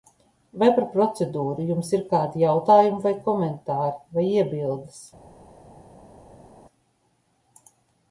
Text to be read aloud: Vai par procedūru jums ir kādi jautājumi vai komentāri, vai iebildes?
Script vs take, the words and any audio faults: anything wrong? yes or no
no